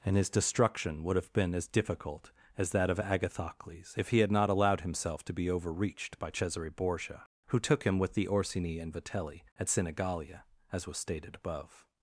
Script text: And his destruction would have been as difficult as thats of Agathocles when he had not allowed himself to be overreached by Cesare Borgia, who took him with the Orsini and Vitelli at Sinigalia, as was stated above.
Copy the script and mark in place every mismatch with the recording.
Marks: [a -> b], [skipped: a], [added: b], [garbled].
And his destruction would have been as difficult as [thats -> that] of Agathocles [when -> if] he had not allowed himself to be overreached by Cesare Borgia, who took him with the Orsini and Vitelli at Sinigalia, as was stated above.